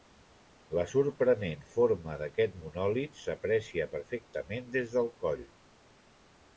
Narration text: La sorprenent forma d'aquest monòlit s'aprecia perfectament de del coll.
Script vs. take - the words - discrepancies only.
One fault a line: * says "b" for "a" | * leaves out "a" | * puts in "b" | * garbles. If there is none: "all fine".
* says "des" for "de"